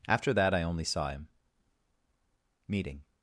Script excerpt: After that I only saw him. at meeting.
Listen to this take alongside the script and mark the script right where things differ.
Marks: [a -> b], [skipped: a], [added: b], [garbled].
After that I only saw him. [skipped: at] meeting.